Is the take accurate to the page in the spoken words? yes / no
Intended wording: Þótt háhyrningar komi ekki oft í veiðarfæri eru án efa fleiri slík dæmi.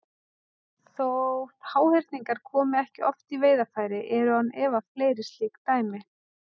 yes